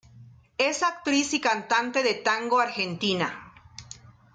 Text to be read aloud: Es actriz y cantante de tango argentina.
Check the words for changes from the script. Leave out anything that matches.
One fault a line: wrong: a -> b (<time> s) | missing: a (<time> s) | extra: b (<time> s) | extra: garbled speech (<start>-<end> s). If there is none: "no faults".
no faults